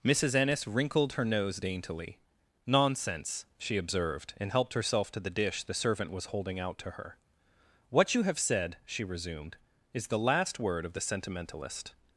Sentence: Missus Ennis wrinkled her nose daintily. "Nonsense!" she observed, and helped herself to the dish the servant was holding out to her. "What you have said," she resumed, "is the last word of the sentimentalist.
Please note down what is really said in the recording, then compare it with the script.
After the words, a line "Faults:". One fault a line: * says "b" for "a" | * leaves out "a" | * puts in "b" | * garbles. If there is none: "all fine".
Missus Ennis wrinkled her nose daintily. "Nonsense!" she observed, and helped herself to the dish the servant was holding out to her. "What you have said," she resumed, "is the last word of the sentimentalist.
Faults:
all fine